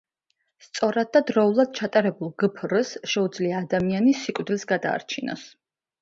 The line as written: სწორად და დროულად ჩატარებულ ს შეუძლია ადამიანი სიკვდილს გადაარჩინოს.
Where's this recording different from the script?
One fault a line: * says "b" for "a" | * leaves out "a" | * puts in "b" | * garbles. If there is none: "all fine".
* puts in "გფრ"